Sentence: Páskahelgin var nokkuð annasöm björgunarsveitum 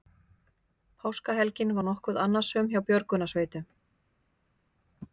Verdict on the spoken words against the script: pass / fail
fail